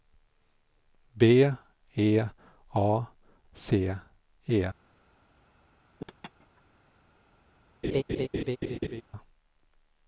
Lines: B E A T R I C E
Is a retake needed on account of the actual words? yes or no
yes